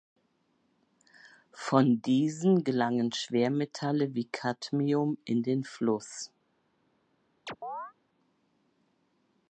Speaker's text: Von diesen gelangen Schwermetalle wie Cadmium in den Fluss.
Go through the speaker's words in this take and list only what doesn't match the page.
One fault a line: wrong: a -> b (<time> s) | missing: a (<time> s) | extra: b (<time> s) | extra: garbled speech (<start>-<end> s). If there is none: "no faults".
no faults